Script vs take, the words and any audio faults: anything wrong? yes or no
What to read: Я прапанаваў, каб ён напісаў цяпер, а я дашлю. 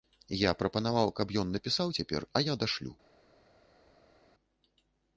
no